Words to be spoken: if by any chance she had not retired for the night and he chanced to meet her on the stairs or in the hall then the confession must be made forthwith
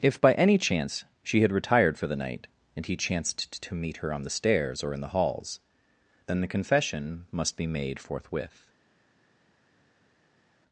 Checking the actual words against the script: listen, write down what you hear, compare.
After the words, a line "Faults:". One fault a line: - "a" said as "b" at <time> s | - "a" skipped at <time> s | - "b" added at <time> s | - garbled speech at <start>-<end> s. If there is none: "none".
if by any chance she had retired for the night and he chanced to meet her on the stairs or in the halls then the confession must be made forthwith
Faults:
- "not" skipped at 1.5 s
- "hall" said as "halls" at 5.1 s